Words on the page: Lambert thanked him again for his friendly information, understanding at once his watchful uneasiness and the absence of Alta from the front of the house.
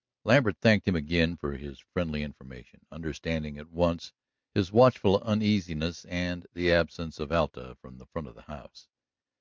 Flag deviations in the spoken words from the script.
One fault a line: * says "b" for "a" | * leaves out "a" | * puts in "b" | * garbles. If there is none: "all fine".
all fine